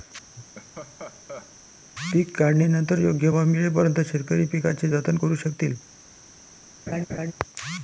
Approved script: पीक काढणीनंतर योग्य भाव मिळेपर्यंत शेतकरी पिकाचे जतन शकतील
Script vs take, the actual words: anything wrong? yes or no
yes